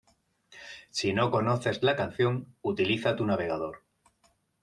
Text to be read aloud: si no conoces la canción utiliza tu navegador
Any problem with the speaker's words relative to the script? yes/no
no